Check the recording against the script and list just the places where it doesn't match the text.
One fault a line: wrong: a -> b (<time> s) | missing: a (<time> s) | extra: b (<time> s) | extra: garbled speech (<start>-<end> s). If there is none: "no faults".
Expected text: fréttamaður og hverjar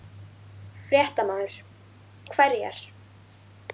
no faults